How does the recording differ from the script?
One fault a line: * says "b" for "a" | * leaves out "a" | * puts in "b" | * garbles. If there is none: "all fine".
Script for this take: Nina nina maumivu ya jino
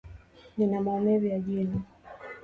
* leaves out "nina"